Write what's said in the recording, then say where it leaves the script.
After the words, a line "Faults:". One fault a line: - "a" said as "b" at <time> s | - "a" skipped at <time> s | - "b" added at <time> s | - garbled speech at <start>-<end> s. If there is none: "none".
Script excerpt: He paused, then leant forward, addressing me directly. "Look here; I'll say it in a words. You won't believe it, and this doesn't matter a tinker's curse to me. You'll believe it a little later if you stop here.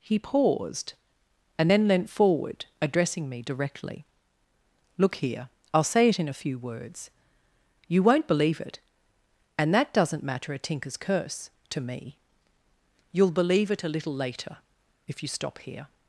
He paused, and then leant forward, addressing me directly. "Look here; I'll say it in a few words. You won't believe it, and that doesn't matter a tinker's curse to me. You'll believe it a little later if you stop here.
Faults:
- "and" added at 1.6 s
- "few" added at 6.3 s
- "this" said as "that" at 9.7 s